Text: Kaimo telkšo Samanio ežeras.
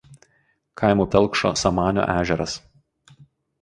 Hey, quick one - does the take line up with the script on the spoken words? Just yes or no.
yes